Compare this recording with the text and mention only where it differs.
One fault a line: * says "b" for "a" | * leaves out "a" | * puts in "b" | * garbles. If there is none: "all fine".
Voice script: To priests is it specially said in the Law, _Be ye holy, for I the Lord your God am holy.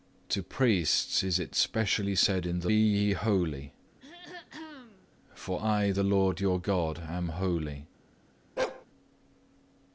* leaves out "Law Be"